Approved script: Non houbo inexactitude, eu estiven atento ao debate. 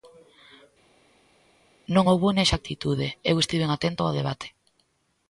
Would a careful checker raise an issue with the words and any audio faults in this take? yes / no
no